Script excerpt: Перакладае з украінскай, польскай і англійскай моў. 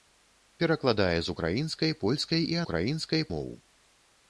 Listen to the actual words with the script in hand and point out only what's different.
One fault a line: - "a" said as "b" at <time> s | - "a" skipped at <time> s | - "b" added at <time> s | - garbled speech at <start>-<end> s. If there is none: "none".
- "англійскай" said as "украінскай" at 2.6 s